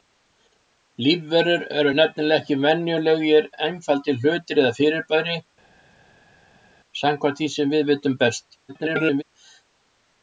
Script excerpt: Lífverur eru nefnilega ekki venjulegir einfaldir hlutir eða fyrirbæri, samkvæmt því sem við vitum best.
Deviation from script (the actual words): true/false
true